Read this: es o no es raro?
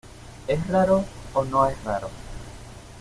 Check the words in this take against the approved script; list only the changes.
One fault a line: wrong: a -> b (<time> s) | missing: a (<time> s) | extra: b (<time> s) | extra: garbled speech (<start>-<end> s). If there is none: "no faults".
extra: raro (0.7 s)